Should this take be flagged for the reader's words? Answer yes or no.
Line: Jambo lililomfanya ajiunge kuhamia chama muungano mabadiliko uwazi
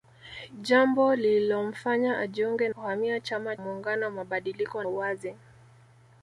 no